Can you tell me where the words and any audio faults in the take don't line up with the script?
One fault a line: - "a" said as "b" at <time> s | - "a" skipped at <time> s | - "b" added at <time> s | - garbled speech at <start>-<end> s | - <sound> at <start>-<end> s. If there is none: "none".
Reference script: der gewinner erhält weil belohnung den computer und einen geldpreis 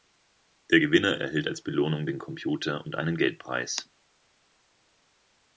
- "weil" said as "als" at 1.5 s